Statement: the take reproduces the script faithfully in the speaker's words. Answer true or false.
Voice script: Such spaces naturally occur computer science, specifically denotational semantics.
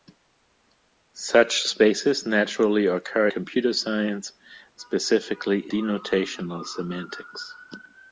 true